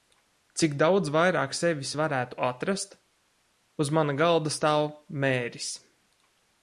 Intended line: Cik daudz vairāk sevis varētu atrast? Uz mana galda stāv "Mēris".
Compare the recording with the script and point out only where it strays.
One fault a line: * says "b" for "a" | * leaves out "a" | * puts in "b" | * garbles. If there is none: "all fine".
all fine